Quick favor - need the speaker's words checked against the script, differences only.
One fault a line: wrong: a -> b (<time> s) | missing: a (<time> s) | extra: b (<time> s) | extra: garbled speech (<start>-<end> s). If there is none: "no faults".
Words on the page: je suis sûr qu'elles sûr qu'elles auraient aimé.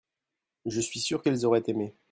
missing: sûr qu'elles (1.5 s)